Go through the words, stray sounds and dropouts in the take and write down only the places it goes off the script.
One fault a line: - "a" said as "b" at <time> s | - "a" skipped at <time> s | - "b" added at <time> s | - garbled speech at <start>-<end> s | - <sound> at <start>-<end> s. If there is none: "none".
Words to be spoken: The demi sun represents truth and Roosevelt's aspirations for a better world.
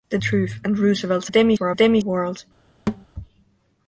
- "demi sun represents" skipped at 0.2 s
- "aspirations" said as "demi" at 1.3 s
- "better" said as "demi" at 1.7 s
- thud at 2.9-3.1 s